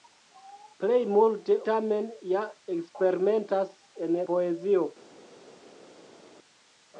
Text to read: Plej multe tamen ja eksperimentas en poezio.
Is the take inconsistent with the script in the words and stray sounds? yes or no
no